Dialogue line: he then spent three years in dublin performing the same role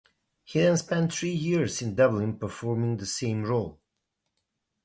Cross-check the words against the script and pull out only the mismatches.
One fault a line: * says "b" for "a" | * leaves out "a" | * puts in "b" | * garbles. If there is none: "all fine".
all fine